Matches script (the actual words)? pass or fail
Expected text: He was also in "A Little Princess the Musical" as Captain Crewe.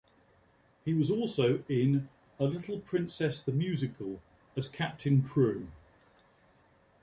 pass